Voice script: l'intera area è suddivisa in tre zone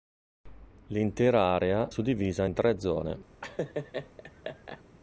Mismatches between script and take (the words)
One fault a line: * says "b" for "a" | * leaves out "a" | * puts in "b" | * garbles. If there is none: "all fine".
* leaves out "è"